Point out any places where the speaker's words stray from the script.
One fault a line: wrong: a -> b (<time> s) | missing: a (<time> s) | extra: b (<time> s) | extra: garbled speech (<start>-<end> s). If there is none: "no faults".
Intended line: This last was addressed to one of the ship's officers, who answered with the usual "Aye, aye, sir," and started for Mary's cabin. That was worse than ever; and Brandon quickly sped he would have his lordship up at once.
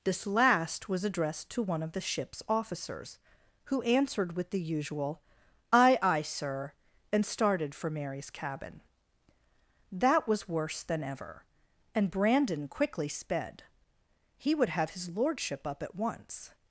no faults